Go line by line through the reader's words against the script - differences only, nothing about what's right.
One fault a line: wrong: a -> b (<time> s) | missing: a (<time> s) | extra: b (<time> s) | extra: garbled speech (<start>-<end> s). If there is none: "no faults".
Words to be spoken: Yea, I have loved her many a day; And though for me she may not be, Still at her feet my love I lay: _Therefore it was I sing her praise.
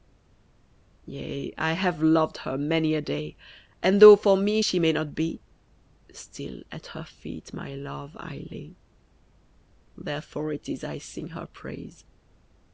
wrong: was -> is (10.7 s)